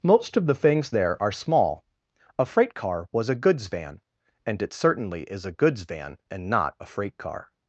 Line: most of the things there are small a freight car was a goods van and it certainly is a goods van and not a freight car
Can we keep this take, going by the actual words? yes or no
yes